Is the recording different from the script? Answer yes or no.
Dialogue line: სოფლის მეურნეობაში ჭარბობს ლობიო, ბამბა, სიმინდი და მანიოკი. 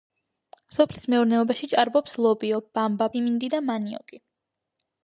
no